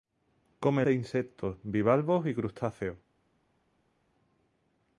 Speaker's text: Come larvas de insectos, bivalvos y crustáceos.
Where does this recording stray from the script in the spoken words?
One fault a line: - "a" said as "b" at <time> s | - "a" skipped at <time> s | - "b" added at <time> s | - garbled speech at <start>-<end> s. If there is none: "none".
- "larvas" skipped at 0.8 s